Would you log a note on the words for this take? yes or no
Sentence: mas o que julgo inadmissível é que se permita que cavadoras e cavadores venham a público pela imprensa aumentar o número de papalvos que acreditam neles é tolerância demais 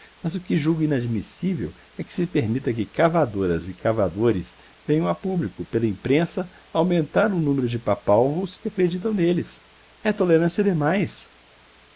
no